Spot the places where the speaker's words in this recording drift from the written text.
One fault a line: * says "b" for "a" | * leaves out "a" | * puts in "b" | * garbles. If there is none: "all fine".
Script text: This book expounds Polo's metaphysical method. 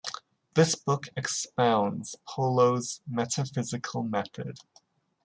all fine